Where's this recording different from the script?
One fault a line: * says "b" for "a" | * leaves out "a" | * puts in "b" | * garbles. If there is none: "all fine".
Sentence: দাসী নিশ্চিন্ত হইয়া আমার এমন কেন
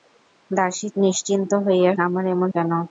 all fine